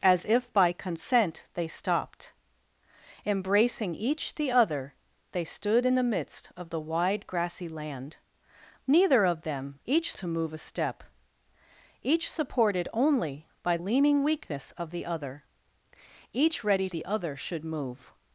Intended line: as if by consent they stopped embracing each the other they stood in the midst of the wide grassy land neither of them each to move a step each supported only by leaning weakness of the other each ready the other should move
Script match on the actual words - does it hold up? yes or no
yes